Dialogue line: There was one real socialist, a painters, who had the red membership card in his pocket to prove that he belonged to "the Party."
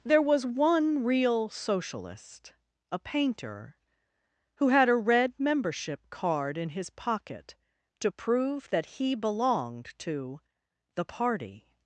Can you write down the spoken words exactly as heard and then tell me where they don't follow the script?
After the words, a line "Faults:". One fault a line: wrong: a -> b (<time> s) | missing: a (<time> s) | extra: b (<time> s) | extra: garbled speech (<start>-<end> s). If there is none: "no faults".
There was one real socialist, a painter, who had a red membership card in his pocket to prove that he belonged to "the Party."
Faults:
wrong: painters -> painter (3.0 s)
wrong: the -> a (4.9 s)